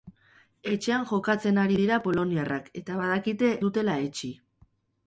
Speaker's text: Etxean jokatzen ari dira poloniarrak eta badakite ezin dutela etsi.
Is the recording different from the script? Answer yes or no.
yes